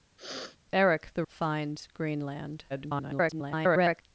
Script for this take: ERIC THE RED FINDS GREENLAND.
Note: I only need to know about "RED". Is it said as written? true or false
false